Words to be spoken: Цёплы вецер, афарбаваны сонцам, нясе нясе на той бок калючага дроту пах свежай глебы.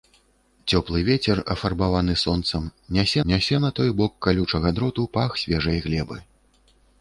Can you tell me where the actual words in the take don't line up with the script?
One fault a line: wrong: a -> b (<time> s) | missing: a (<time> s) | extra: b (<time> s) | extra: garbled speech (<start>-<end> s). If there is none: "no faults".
no faults